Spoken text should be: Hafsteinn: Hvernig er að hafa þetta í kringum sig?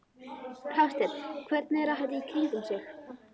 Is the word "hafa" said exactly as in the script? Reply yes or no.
no